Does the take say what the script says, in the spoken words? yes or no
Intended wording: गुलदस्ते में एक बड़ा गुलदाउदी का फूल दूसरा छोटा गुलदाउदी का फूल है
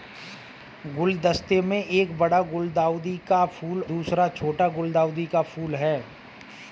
yes